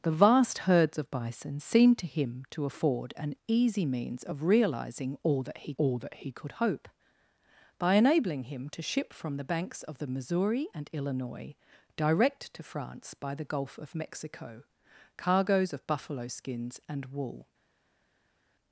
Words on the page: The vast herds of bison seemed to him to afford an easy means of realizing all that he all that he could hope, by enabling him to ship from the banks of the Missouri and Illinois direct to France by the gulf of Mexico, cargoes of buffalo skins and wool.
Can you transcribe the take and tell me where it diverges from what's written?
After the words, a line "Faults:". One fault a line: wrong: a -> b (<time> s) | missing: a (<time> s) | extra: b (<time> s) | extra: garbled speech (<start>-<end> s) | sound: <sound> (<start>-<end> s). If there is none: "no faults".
The vast herds of bison seemed to him to afford an easy means of realizing all that he all that he could hope, by enabling him to ship from the banks of the Missouri and Illinois direct to France by the gulf of Mexico, cargoes of buffalo skins and wool.
Faults:
no faults